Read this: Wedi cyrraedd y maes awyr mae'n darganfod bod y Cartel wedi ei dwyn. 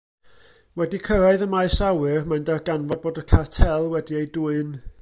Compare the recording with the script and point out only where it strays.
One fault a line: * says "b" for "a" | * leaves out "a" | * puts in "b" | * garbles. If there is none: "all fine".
all fine